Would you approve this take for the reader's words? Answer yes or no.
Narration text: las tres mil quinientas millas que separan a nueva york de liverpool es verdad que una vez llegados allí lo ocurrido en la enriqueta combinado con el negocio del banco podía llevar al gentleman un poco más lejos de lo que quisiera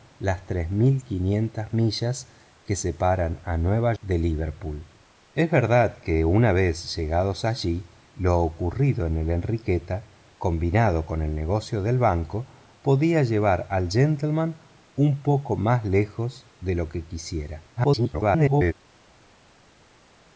no